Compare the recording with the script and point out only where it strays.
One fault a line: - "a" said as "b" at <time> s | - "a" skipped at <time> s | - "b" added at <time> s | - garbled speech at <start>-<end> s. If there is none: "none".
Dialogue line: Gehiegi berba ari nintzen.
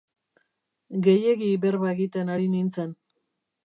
- "egiten" added at 1.9 s